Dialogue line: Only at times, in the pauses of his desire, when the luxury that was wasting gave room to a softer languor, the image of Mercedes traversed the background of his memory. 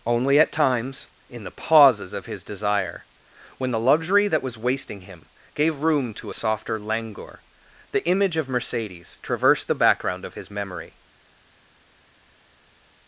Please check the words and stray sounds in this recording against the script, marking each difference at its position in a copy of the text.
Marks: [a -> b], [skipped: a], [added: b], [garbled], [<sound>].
Only at times, in the pauses of his desire, when the luxury that was wasting [added: him] gave room to a softer languor, the image of Mercedes traversed the background of his memory.